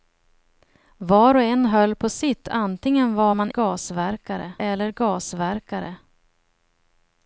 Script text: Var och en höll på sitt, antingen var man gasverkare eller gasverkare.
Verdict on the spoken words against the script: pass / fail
pass